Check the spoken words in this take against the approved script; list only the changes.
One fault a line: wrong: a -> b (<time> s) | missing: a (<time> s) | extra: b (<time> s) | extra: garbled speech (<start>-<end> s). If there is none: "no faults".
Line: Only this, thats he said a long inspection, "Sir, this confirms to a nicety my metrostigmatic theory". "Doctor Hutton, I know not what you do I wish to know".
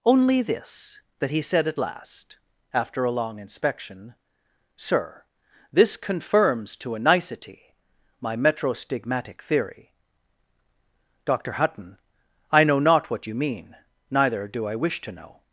wrong: thats -> that (1.2 s)
extra: at last after (1.7 s)
extra: mean neither (13.3 s)